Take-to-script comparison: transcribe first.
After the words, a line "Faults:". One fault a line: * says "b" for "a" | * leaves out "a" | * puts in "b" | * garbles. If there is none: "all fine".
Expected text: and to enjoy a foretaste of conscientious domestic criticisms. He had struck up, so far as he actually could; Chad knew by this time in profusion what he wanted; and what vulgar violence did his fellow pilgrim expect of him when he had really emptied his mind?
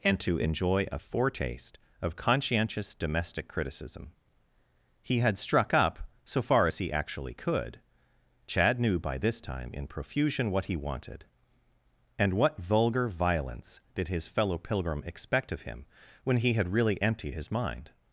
and to enjoy a foretaste of conscientious domestic criticism. He had struck up, so far as he actually could; Chad knew by this time in profusion what he wanted; and what vulgar violence did his fellow pilgrim expect of him when he had really emptied his mind?
Faults:
* says "criticism" for "criticisms"